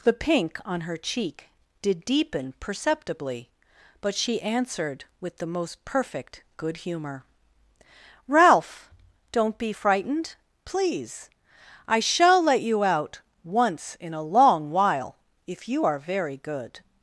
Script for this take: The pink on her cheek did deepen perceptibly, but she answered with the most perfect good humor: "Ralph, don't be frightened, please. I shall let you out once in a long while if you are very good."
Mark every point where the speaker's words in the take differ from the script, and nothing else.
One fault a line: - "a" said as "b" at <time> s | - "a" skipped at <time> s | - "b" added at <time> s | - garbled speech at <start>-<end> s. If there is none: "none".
none